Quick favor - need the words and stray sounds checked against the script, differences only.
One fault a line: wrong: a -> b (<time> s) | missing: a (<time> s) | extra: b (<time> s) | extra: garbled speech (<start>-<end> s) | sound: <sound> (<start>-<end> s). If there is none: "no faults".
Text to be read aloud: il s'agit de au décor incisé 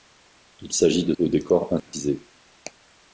sound: dropout (1.8-1.9 s)